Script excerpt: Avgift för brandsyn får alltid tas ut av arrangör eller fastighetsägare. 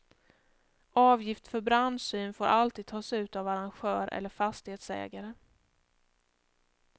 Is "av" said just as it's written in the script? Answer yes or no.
yes